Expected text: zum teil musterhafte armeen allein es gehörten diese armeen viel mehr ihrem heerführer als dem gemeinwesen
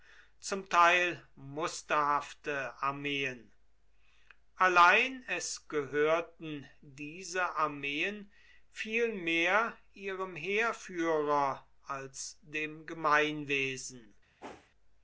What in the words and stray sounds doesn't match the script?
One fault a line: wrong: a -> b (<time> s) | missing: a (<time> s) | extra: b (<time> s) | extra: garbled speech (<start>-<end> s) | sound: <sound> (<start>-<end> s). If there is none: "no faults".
sound: whoosh (14.4-14.7 s)